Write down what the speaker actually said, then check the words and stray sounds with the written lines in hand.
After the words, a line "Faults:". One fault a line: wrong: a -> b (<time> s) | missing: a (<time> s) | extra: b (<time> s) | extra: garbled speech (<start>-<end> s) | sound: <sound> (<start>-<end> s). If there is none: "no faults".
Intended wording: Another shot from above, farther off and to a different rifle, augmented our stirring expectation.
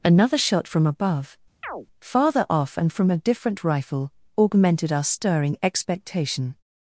Another shot from above, farther off and from a different rifle, augmented our stirring expectation.
Faults:
sound: chirp (1.6-1.9 s)
wrong: to -> from (2.9 s)